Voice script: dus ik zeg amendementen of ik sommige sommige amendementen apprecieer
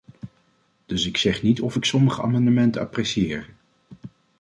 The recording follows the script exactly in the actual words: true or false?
false